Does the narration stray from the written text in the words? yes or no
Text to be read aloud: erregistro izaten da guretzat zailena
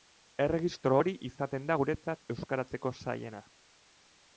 yes